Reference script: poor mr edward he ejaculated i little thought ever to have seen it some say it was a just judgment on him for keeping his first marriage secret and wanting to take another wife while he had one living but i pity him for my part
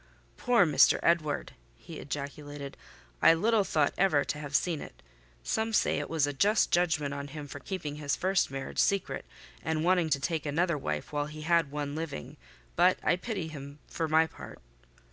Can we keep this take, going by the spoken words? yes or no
yes